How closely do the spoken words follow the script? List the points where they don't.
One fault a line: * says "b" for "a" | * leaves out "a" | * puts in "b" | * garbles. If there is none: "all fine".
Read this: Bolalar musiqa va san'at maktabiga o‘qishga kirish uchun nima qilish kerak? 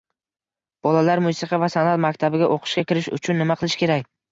all fine